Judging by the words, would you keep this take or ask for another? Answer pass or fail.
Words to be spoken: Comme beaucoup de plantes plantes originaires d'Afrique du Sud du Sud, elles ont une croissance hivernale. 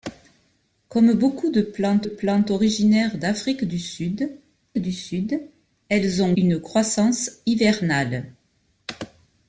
pass